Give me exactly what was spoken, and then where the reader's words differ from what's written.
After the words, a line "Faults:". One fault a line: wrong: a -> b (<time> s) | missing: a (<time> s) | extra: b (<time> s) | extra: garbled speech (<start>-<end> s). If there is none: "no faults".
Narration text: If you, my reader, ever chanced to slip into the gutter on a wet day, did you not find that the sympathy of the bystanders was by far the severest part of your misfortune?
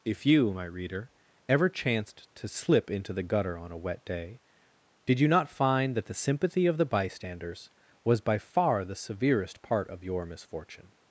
If you, my reader, ever chanced to slip into the gutter on a wet day, did you not find that the sympathy of the bystanders was by far the severest part of your misfortune?
Faults:
no faults